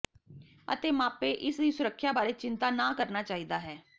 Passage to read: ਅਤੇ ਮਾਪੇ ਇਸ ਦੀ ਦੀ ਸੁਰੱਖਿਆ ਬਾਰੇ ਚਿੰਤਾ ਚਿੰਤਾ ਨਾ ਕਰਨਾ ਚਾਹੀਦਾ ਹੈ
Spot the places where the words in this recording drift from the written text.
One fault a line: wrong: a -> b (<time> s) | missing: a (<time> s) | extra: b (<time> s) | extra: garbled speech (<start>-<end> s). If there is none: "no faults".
missing: ਦੀ (1.7 s)
missing: ਚਿੰਤਾ (2.7 s)